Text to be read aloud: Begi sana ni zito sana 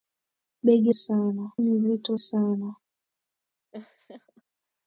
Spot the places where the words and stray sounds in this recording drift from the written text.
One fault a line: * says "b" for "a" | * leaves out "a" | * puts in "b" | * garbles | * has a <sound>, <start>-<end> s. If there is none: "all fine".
* has a laugh, 3.7-4.4 s